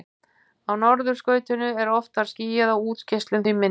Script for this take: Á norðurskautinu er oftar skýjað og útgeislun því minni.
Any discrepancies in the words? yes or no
no